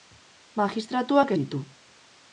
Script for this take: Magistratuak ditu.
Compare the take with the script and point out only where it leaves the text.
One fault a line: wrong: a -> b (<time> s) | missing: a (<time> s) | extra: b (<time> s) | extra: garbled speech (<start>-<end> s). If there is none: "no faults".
no faults